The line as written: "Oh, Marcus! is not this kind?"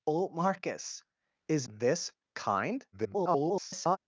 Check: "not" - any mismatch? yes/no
yes